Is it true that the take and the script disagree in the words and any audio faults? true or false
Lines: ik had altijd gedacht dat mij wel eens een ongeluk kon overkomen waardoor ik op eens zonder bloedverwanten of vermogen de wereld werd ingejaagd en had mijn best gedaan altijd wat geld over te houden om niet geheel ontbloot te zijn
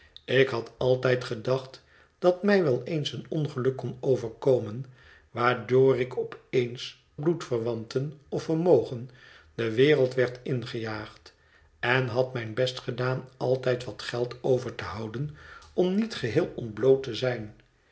true